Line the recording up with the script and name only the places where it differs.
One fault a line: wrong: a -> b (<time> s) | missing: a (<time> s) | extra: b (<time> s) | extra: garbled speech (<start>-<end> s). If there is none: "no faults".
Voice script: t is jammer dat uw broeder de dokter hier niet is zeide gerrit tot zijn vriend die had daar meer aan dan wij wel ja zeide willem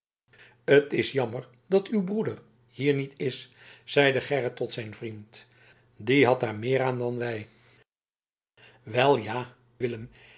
missing: de dokter (2.4 s)
missing: zeide (9.6 s)